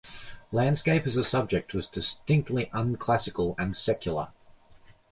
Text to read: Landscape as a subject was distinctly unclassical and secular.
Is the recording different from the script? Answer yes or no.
no